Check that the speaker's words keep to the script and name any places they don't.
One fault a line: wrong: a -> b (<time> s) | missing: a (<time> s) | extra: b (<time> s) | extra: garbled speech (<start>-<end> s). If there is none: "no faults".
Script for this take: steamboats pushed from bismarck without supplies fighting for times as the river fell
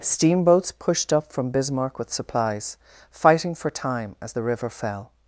extra: up (1.1 s)
wrong: without -> with (2.0 s)
wrong: times -> time (3.7 s)